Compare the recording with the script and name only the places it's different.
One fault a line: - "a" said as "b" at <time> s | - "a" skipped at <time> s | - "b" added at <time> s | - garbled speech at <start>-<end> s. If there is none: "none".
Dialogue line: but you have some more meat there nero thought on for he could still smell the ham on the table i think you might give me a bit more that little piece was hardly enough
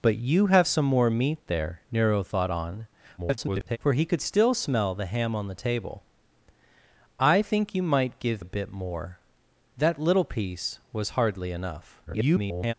- garbled speech at 3.2-3.8 s
- "me" skipped at 8.4 s
- garbled speech at 12.1-12.7 s